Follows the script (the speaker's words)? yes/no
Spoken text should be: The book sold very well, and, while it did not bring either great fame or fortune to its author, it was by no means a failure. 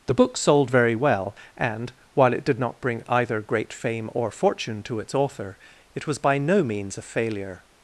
yes